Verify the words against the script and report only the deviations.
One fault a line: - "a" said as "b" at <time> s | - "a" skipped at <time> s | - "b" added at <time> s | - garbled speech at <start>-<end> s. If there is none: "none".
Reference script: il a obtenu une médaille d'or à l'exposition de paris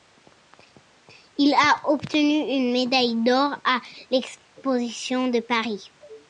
none